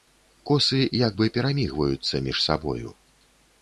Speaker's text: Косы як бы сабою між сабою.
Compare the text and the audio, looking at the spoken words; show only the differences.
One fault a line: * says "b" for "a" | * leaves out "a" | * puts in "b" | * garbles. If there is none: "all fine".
* says "перамігваюцца" for "сабою"